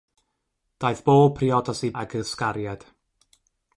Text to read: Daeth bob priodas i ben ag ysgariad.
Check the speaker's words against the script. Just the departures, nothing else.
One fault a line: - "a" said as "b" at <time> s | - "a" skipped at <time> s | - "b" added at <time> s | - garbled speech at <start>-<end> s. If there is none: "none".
- "ben" skipped at 1.9 s